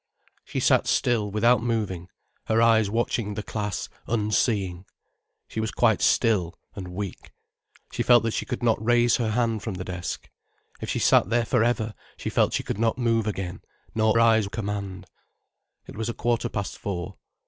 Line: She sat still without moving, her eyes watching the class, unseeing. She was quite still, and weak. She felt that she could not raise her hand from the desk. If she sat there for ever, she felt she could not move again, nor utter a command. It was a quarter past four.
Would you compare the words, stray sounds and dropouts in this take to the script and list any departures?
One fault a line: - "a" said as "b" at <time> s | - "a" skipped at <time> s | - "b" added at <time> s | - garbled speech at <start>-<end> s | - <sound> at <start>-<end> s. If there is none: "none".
- "utter" said as "eyes" at 14.2 s